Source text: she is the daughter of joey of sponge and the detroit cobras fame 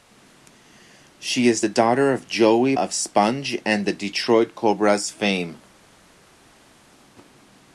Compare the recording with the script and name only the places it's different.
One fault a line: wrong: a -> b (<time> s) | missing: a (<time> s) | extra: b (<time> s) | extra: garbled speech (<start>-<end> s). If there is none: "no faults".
no faults